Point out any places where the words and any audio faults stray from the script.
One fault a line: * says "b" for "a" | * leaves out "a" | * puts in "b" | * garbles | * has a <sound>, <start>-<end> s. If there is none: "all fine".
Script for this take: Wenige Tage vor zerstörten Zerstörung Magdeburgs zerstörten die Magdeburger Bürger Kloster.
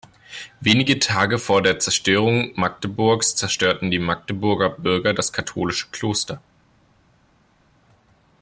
* says "der" for "zerstörten"
* puts in "das katholische"